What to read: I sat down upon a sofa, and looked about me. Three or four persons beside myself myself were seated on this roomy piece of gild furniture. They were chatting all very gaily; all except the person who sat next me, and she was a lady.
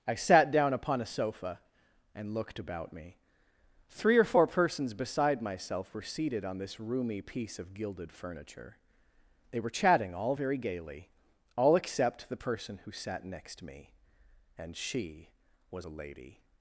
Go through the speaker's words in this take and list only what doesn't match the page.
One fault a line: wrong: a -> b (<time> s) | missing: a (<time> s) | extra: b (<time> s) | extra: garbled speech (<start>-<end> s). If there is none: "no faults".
missing: myself (5.9 s)
wrong: gild -> gilded (7.7 s)